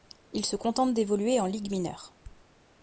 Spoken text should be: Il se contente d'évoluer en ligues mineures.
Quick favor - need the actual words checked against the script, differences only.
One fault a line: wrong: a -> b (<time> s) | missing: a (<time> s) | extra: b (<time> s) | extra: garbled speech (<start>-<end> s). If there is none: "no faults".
no faults